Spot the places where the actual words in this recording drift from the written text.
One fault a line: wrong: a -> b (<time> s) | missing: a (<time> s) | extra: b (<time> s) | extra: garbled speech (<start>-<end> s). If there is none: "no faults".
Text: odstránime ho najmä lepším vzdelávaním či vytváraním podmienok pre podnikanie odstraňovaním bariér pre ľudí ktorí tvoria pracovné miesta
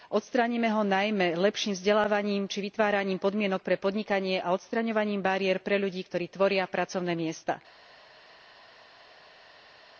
extra: a (4.4 s)